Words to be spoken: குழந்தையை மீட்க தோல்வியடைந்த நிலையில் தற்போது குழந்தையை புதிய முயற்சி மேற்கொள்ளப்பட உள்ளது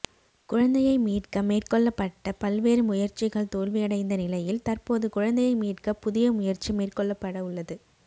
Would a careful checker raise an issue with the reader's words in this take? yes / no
yes